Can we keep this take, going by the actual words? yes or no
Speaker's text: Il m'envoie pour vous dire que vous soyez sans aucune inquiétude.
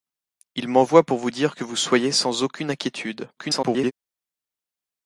no